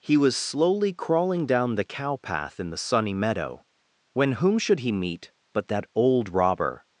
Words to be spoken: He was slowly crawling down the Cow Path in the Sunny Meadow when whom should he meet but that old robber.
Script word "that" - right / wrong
right